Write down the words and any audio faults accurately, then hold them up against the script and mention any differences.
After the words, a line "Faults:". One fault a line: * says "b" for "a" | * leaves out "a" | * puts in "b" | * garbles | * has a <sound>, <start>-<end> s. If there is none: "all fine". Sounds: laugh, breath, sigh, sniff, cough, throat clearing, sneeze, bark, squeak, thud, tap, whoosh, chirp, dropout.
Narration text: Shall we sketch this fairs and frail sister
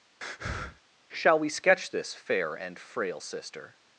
Shall we sketch this fair and frail sister
Faults:
* has a breath, 0.2-0.8 s
* says "fair" for "fairs"